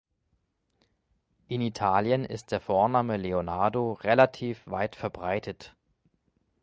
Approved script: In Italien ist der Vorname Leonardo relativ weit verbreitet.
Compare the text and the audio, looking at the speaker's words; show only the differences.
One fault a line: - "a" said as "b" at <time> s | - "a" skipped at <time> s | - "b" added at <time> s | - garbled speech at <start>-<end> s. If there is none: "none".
none